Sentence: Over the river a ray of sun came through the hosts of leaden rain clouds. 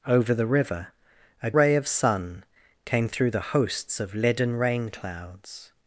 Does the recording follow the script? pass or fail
pass